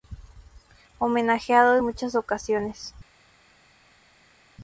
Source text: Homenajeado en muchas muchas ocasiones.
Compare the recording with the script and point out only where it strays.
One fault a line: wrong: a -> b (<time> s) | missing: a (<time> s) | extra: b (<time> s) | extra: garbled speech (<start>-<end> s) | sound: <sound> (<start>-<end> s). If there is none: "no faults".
missing: muchas (2.2 s)